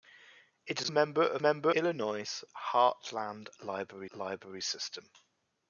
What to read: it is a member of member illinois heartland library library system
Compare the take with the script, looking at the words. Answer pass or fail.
pass